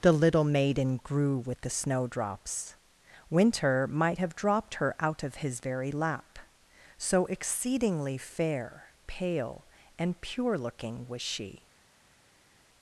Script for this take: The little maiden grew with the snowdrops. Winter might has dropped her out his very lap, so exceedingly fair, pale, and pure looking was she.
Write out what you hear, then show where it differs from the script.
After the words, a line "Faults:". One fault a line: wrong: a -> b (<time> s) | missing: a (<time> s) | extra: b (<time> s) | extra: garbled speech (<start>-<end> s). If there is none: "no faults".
The little maiden grew with the snowdrops. Winter might have dropped her out of his very lap, so exceedingly fair, pale, and pure looking was she.
Faults:
wrong: has -> have (4.2 s)
extra: of (5.2 s)